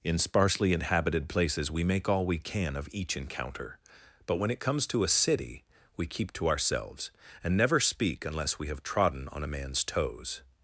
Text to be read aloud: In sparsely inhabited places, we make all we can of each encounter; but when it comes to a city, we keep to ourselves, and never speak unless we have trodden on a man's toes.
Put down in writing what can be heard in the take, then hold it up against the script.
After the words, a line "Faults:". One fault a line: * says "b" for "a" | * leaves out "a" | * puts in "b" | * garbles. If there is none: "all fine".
In sparsely inhabited places, we make all we can of each encounter; but when it comes to a city, we keep to ourselves, and never speak unless we have trodden on a man's toes.
Faults:
all fine